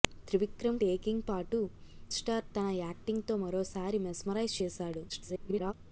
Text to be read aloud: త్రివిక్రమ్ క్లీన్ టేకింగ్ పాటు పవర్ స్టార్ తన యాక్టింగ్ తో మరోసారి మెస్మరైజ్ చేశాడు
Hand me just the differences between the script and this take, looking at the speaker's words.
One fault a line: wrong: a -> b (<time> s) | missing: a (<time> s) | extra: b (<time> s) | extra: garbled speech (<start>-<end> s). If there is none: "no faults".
missing: క్లీన్ (0.8 s)
missing: పవర్ (1.6 s)
extra: garbled speech (5.1-5.7 s)